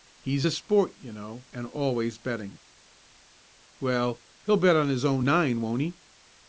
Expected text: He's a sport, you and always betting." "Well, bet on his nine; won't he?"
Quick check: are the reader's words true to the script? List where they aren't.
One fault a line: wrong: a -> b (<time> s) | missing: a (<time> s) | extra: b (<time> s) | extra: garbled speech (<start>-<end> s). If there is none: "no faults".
extra: know (1.1 s)
extra: he'll (4.4 s)
extra: own (5.1 s)